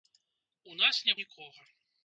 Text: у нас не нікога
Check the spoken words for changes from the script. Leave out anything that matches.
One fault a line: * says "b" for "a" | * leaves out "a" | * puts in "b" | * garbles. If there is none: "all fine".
all fine